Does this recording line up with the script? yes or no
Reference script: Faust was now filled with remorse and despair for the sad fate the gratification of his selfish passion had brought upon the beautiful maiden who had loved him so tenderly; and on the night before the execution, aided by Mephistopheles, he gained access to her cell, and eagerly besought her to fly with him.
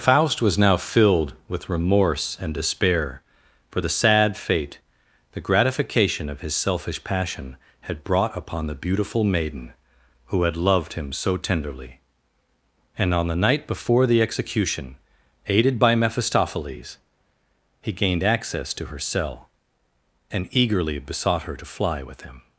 yes